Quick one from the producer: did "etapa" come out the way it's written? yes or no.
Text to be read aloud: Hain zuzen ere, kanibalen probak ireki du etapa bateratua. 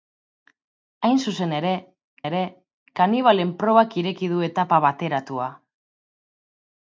yes